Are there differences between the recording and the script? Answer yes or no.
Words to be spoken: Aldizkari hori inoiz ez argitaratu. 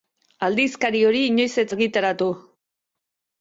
no